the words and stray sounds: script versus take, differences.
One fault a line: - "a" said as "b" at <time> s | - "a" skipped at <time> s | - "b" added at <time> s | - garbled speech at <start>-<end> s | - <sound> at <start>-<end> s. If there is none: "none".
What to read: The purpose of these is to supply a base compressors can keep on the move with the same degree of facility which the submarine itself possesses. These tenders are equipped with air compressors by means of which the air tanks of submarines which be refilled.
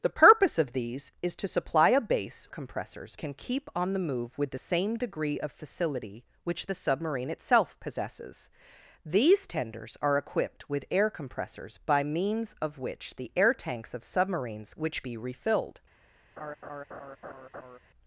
- laugh at 16.4-17.8 s